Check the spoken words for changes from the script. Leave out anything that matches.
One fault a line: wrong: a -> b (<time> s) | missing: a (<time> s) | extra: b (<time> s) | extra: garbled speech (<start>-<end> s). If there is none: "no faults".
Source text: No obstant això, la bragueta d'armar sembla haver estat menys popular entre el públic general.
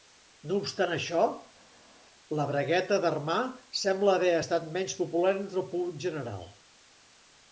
no faults